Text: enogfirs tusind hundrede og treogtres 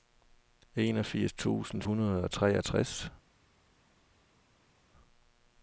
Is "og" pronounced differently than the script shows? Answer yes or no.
no